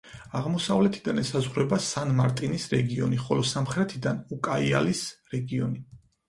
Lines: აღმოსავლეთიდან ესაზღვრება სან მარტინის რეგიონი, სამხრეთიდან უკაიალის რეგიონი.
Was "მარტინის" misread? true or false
false